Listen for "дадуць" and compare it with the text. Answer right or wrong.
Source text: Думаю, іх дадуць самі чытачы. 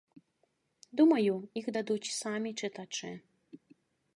right